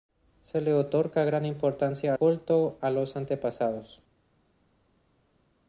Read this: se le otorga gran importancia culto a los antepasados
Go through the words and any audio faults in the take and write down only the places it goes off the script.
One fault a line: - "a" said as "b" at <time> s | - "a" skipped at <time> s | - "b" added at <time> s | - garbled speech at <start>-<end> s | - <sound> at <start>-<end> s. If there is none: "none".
none